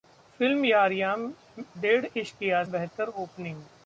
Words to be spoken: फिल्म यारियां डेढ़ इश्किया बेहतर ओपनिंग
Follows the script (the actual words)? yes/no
yes